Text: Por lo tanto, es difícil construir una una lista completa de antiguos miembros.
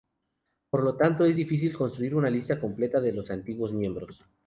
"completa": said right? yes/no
yes